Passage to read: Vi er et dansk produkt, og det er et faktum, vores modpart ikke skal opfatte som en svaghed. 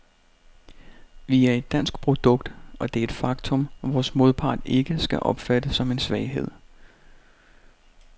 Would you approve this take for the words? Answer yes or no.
yes